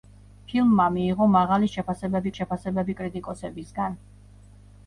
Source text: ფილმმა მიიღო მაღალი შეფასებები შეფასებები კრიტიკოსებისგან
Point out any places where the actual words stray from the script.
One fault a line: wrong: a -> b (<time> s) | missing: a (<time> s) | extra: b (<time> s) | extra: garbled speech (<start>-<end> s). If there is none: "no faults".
no faults